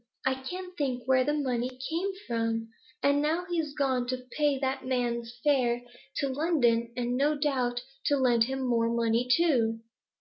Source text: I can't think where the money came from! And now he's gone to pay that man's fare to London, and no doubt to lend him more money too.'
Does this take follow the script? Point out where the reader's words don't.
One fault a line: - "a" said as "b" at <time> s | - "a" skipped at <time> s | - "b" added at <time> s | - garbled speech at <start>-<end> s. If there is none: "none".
none